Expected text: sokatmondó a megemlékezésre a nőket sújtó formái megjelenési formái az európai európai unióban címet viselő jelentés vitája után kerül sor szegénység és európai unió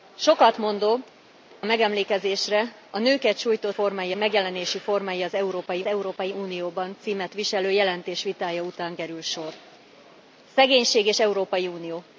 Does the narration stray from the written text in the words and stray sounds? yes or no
no